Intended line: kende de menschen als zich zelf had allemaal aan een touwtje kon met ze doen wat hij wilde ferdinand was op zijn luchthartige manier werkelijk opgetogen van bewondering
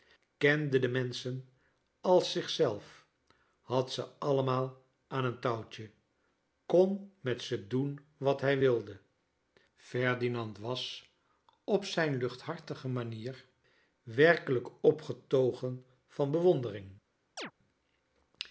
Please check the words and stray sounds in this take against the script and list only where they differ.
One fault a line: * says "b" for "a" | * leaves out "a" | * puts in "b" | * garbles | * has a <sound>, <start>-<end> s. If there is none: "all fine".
* puts in "ze"
* has a chirp, 17.4-17.5 s